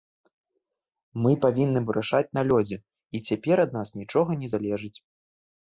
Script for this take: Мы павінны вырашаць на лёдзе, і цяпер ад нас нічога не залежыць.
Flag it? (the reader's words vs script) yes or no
no